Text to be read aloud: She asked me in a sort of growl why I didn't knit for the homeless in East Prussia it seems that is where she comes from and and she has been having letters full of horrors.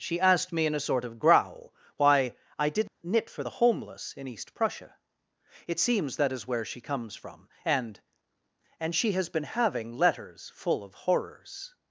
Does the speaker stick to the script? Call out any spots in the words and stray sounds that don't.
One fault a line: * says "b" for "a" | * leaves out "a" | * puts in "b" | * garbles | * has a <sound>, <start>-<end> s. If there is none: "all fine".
* has a dropout, 2.9-3.0 s